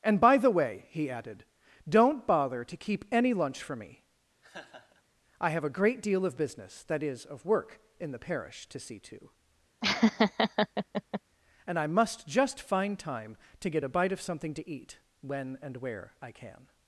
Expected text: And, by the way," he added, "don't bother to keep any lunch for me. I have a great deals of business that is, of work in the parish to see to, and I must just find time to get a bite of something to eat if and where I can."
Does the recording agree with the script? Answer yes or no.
no